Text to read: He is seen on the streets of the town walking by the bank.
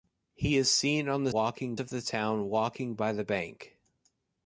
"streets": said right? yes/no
no